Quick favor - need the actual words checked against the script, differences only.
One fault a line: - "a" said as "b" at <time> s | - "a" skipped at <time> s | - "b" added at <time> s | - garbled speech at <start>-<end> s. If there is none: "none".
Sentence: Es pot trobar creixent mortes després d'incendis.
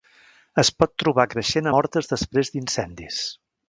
none